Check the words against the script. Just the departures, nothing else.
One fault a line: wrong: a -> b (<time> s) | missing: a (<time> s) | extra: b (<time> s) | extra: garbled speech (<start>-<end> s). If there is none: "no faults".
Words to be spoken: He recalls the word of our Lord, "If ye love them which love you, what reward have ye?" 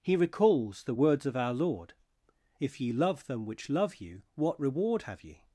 wrong: word -> words (0.9 s)